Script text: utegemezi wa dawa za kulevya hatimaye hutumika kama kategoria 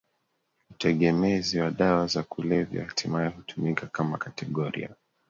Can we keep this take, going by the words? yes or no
yes